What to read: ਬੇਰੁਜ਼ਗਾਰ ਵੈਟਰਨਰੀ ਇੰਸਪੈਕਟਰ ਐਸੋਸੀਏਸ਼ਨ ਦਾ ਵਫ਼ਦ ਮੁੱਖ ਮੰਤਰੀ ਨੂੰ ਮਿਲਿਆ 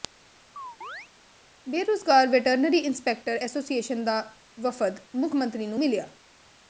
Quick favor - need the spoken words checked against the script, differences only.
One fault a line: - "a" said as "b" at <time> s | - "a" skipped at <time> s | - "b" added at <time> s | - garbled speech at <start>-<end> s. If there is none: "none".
none